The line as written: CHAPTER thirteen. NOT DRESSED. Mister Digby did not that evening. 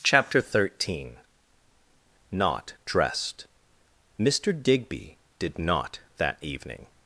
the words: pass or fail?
pass